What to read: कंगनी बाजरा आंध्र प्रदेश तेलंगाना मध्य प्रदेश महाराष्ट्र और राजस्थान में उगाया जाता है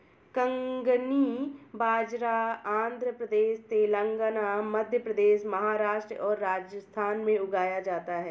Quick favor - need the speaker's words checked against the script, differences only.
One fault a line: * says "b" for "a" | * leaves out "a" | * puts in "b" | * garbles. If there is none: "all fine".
all fine